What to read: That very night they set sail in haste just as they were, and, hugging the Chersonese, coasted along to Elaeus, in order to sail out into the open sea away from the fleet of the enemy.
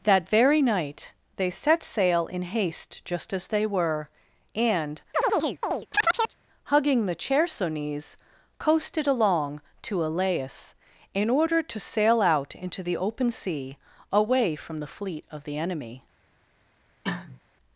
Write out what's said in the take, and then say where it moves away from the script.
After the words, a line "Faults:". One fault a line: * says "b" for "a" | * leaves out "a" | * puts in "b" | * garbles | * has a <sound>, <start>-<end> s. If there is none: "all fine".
That very night they set sail in haste just as they were, and, hugging the Chersonese, coasted along to Elaeus, in order to sail out into the open sea away from the fleet of the enemy.
Faults:
* has a chirp, 5.1-6.4 s
* has a cough, 17.0-17.4 s